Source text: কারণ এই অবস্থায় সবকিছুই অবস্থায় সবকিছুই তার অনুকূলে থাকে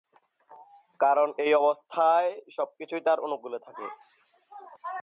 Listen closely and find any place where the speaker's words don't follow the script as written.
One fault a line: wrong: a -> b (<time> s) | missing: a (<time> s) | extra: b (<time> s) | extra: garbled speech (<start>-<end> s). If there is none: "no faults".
missing: অবস্থায় সবকিছুই (3.0 s)